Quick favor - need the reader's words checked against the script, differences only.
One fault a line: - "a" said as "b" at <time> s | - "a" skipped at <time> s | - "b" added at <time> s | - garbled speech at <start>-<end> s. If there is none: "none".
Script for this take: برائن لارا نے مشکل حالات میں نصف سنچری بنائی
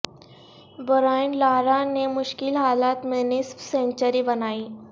none